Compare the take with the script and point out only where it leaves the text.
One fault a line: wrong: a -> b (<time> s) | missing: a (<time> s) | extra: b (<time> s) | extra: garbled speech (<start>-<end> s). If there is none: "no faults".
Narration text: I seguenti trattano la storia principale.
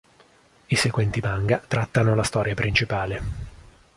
extra: manga (1.2 s)